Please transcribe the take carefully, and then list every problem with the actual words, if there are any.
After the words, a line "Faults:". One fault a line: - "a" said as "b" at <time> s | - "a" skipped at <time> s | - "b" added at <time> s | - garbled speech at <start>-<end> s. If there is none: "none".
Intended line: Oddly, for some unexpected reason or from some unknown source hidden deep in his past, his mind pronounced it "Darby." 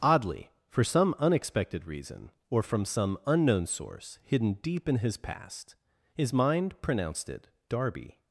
Oddly, for some unexpected reason or from some unknown source hidden deep in his past, his mind pronounced it "Darby."
Faults:
none